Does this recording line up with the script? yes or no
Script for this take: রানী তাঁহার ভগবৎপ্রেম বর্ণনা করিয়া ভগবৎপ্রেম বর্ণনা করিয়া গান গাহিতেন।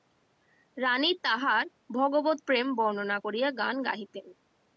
no